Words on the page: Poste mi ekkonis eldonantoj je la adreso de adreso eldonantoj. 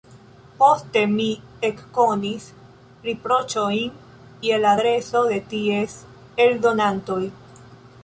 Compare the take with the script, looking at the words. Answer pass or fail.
fail